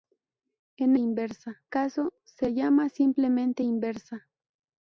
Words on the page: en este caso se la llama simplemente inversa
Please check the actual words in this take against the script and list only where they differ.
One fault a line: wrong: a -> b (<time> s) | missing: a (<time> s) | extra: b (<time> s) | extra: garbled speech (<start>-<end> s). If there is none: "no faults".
wrong: este -> inversa (1.0 s)
missing: la (2.5 s)